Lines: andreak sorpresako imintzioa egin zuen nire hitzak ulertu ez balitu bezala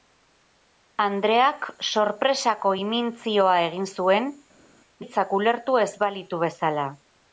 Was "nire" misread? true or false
true